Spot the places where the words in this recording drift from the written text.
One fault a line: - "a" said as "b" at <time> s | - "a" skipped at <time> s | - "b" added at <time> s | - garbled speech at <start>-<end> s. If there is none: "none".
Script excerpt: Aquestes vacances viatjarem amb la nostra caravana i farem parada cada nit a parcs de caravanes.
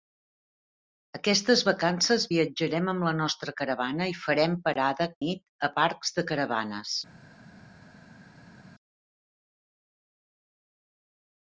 - "cada" skipped at 5.1 s